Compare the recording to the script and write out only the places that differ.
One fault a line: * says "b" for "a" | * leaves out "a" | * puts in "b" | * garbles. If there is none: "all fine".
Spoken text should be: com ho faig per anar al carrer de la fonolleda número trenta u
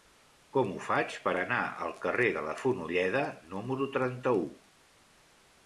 all fine